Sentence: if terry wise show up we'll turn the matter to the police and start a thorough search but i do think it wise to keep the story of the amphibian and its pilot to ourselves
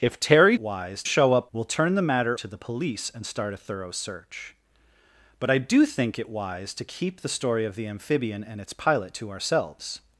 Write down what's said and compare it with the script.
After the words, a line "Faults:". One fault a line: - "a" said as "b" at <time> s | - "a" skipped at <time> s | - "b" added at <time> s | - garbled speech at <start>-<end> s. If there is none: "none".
if terry wise show up we'll turn the matter to the police and start a thorough search but i do think it wise to keep the story of the amphibian and its pilot to ourselves
Faults:
none